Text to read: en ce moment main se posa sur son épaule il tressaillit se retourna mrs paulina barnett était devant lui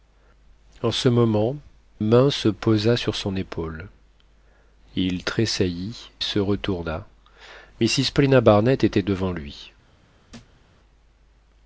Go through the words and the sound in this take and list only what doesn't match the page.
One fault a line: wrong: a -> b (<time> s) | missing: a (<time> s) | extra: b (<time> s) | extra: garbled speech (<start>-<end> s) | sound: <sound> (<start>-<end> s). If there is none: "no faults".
sound: thud (10.3-10.6 s)